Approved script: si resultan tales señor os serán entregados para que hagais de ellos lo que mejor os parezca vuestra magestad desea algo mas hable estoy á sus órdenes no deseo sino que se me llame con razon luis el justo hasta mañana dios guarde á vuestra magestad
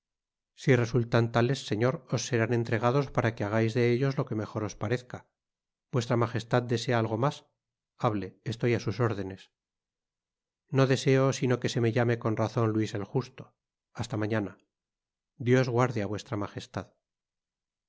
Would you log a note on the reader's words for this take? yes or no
no